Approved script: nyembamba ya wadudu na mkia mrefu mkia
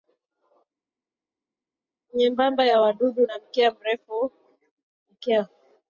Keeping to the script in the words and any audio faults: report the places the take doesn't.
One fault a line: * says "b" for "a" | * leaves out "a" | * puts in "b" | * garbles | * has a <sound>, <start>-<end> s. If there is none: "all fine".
all fine